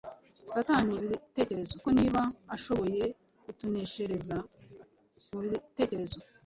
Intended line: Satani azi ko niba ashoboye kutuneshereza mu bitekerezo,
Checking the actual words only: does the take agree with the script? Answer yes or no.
no